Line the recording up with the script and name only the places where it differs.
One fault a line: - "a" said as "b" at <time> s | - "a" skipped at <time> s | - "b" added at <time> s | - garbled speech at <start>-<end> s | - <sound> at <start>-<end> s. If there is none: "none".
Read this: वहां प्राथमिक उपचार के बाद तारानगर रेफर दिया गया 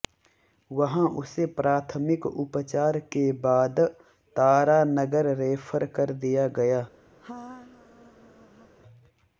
- "उसे" added at 1.2 s
- "कर" added at 6.0 s
- laugh at 7.2-8.7 s